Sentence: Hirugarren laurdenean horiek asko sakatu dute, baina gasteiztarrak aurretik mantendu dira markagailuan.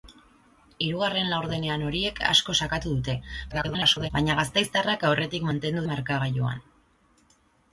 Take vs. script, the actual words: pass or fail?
fail